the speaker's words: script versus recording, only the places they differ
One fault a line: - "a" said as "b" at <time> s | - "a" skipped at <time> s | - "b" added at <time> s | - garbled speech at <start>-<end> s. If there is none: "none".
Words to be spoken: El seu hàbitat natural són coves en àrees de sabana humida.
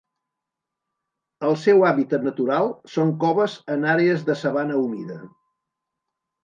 none